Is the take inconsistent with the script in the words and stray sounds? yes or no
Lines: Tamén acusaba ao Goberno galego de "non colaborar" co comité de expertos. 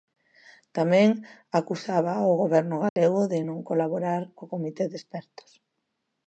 yes